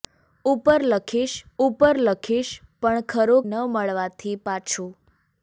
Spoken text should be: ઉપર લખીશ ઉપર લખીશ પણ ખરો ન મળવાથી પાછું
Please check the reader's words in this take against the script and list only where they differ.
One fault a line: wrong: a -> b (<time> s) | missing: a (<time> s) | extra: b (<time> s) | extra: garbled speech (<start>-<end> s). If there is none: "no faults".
no faults